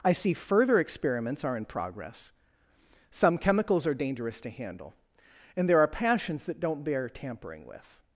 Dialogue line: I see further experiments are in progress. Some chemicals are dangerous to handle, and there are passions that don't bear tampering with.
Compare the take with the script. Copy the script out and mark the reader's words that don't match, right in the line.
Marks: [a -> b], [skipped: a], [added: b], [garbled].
I see further experiments are in progress. Some chemicals are dangerous to handle, and there are passions that don't bear tampering with.